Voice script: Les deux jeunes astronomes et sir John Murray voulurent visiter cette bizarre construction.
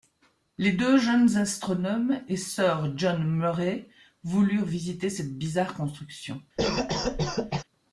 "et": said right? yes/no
yes